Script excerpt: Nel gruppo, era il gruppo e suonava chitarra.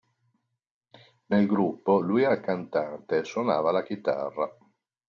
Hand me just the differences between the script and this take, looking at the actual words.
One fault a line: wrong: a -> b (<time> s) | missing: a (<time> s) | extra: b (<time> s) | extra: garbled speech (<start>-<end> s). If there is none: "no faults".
extra: lui (2.0 s)
wrong: gruppo -> cantante (2.4 s)
extra: la (3.7 s)